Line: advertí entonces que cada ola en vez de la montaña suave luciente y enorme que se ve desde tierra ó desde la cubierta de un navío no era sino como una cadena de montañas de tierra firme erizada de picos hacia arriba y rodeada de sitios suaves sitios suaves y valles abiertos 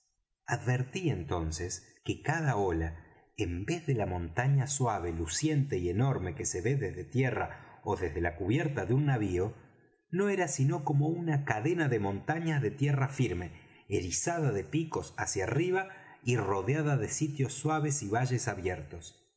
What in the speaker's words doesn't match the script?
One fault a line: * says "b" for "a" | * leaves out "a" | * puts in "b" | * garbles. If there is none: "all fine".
* leaves out "sitios suaves"